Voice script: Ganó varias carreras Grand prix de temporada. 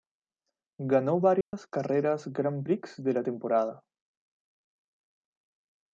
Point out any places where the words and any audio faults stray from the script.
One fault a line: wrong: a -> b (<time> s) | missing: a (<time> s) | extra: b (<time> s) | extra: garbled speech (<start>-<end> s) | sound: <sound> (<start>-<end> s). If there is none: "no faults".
sound: dropout (1.4-1.5 s)
extra: la (3.1 s)